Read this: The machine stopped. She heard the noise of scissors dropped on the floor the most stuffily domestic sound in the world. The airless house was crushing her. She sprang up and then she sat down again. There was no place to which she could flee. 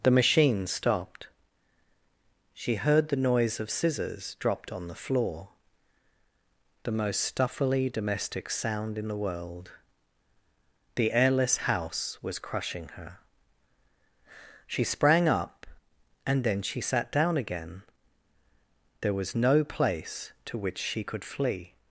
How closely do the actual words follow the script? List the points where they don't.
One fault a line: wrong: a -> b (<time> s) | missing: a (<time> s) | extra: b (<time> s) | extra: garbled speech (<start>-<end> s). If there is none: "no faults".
no faults